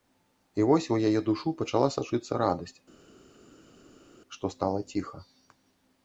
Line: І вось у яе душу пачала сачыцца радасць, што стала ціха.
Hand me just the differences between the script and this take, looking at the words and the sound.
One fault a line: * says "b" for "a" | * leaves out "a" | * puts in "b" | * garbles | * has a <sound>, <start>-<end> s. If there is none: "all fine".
all fine